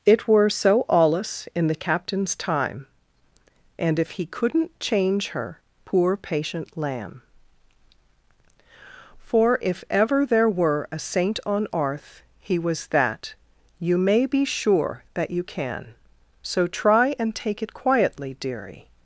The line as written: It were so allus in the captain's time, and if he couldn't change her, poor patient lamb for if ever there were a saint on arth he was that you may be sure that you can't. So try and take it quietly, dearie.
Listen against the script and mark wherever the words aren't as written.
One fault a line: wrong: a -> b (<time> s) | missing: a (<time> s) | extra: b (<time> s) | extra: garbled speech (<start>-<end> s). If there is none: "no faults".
wrong: can't -> can (15.4 s)